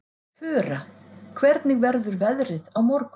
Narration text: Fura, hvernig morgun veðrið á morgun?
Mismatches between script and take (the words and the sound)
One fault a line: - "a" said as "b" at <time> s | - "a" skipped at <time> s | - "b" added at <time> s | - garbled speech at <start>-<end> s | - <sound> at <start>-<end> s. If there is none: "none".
- "morgun" said as "verður" at 1.9 s